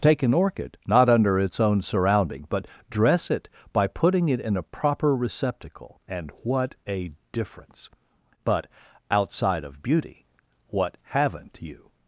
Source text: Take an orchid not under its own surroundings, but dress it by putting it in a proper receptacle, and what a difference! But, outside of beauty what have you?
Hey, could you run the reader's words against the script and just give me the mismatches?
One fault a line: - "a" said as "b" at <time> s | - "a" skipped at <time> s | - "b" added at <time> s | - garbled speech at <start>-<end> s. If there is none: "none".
- "surroundings" said as "surrounding" at 1.8 s
- "have" said as "haven't" at 11.0 s